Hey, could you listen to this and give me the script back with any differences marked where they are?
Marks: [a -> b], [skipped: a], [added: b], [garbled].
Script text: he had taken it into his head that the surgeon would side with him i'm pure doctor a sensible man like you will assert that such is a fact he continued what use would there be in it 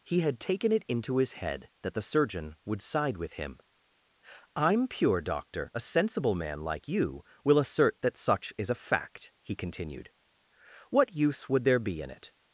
he had taken it into his head that the surgeon would side with him i'm pure doctor a sensible man like you will assert that such is a fact he continued what use would there be in it